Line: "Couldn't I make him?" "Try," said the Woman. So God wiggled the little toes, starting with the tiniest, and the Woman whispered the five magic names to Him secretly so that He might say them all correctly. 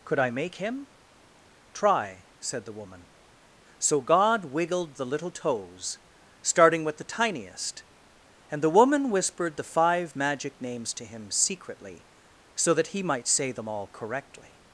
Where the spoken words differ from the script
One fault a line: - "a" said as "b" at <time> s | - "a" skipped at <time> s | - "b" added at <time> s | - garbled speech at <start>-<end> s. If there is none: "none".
- "Couldn't" said as "Could" at 0.0 s